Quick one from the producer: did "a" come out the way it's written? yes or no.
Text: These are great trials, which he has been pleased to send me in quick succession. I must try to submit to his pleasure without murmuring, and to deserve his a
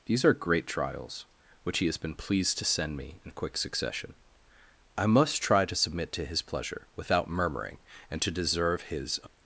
no